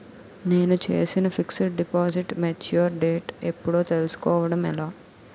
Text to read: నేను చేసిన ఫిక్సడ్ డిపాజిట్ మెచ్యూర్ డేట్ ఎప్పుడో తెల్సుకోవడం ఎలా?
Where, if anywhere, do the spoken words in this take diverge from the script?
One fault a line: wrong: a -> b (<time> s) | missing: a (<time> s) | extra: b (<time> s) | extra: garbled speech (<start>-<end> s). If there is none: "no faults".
no faults